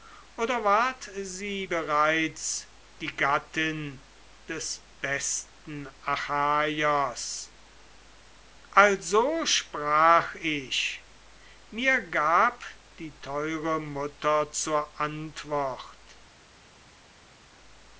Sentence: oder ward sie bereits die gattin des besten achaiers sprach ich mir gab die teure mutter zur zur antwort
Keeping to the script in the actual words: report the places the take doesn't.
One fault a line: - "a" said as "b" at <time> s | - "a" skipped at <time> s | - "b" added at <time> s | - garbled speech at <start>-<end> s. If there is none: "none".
- "also" added at 8.7 s
- "zur" skipped at 15.0 s